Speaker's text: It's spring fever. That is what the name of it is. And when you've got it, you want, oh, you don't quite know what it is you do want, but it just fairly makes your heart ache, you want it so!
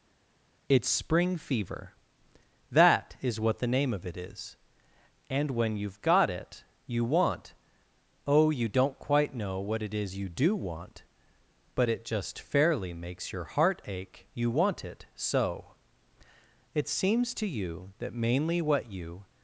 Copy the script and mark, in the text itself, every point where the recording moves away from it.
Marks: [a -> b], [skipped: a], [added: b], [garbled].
It's spring fever. That is what the name of it is. And when you've got it, you want, oh, you don't quite know what it is you do want, but it just fairly makes your heart ache, you want it so! [added: It seems to you that mainly what you]